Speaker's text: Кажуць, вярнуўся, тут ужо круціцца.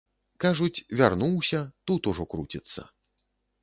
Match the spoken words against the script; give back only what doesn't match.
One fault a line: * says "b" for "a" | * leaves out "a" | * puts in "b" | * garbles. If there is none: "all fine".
all fine